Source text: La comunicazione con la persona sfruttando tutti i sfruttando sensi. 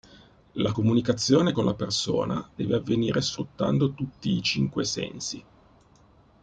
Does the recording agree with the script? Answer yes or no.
no